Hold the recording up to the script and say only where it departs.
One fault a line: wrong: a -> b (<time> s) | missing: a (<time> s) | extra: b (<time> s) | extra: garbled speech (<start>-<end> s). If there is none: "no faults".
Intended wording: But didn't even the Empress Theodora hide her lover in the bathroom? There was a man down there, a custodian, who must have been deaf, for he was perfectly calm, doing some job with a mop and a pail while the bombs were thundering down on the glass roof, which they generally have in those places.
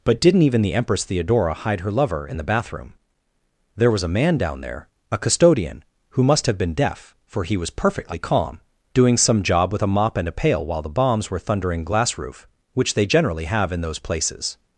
missing: down on the (11.8 s)